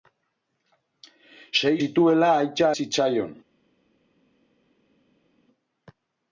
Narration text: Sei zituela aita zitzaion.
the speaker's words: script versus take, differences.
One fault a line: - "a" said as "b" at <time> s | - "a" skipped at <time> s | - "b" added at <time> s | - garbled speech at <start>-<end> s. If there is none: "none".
none